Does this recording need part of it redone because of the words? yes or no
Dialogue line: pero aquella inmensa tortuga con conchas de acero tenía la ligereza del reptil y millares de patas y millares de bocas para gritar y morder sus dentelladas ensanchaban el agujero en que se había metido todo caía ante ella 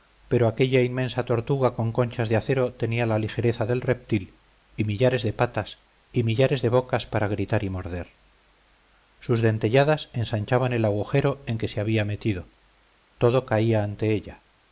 no